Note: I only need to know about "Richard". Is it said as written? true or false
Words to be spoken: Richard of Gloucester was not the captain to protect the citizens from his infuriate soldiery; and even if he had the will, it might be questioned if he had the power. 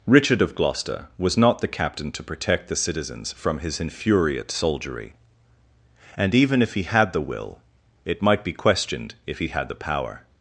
true